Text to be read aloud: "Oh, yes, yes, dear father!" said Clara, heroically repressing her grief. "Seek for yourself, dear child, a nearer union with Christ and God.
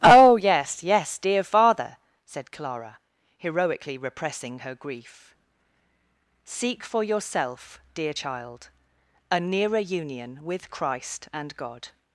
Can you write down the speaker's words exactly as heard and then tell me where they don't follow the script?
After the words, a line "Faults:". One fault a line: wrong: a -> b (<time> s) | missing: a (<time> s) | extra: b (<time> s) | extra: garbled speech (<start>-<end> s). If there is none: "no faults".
"Oh, yes, yes, dear father!" said Clara, heroically repressing her grief. "Seek for yourself, dear child, a nearer union with Christ and God.
Faults:
no faults